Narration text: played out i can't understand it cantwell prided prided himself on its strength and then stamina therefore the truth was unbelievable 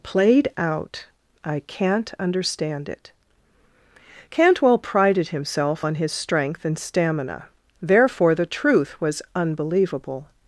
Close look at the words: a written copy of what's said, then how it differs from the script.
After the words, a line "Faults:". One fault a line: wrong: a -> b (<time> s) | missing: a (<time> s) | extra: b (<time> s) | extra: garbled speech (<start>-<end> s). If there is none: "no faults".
played out i can't understand it cantwell prided himself on his strength and stamina therefore the truth was unbelievable
Faults:
missing: prided (5.3 s)
wrong: its -> his (5.9 s)
missing: then (6.8 s)